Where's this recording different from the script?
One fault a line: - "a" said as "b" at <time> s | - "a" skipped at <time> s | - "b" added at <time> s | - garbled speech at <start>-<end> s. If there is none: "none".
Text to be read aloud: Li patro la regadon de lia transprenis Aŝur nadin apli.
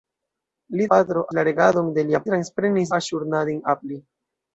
none